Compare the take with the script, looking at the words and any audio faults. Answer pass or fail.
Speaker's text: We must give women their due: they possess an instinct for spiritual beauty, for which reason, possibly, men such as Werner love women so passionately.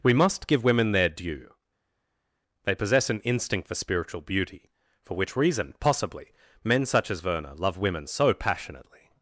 pass